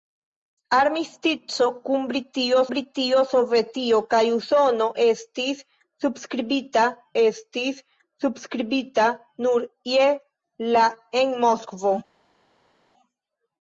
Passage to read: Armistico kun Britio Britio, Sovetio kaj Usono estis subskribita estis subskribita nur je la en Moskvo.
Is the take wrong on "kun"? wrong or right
right